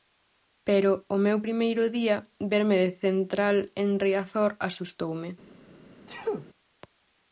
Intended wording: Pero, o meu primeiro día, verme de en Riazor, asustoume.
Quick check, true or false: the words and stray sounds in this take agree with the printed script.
false